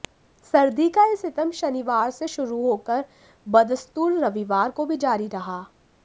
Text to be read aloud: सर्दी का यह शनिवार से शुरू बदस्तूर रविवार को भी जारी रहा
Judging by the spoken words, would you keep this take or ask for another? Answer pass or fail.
fail